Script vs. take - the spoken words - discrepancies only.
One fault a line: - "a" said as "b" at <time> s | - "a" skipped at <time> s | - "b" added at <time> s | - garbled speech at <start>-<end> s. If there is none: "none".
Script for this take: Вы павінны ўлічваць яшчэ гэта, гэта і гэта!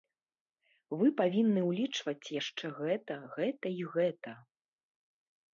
none